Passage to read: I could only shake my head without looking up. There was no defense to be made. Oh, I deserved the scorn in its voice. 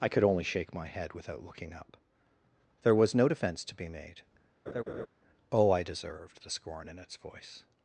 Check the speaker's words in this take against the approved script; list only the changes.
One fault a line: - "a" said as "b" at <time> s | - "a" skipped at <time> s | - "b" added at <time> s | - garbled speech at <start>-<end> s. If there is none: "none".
none